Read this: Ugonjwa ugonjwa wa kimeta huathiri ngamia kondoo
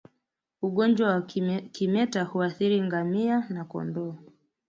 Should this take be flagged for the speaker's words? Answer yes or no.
yes